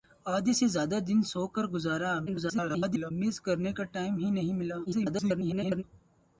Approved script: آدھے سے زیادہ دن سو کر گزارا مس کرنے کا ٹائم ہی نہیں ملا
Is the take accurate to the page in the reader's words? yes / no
no